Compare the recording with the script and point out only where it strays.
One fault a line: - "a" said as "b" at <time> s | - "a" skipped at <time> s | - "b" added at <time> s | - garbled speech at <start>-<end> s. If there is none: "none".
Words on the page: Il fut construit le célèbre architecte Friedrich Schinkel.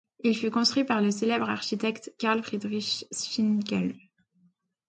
- "par" added at 0.8 s
- "Karl" added at 2.2 s